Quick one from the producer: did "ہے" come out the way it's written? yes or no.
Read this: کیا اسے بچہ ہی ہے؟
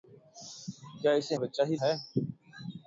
yes